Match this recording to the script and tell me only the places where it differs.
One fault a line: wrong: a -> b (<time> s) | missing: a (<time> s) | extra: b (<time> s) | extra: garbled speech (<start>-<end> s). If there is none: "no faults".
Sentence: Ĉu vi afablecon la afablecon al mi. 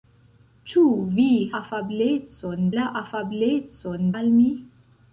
no faults